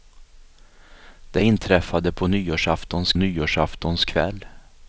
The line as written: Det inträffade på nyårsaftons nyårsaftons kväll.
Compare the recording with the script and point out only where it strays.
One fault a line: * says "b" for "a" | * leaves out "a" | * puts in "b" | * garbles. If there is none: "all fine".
all fine